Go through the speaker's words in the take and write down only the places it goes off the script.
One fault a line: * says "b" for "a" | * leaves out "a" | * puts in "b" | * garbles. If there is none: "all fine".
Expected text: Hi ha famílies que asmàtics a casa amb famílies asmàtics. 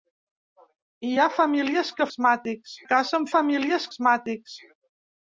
all fine